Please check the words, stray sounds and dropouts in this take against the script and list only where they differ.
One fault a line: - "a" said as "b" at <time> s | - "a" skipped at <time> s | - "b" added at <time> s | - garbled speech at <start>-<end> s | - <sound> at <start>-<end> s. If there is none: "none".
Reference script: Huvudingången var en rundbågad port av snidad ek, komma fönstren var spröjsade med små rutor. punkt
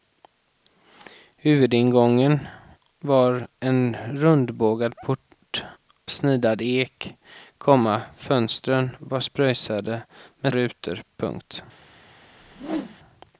- "av" skipped at 5.6 s
- "små" skipped at 10.5 s
- whoosh at 12.2-13.0 s